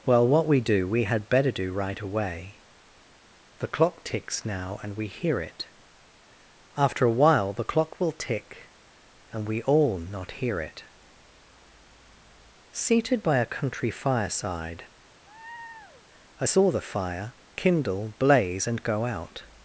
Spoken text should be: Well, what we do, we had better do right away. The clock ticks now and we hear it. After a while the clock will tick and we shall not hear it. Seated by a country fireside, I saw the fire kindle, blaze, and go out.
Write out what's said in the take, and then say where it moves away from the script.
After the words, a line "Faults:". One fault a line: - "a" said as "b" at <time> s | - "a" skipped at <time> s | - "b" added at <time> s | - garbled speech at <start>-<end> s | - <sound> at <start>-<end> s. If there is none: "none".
Well, what we do, we had better do right away. The clock ticks now and we hear it. After a while the clock will tick and we all not hear it. Seated by a country fireside, I saw the fire kindle, blaze, and go out.
Faults:
- "shall" said as "all" at 9.6 s
- laugh at 15.3-16.0 s